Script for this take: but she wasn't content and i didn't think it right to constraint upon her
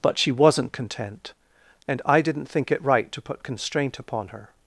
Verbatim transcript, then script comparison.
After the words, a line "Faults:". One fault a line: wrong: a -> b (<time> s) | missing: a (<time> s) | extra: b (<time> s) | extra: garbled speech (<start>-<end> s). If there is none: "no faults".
but she wasn't content and i didn't think it right to put constraint upon her
Faults:
extra: put (3.2 s)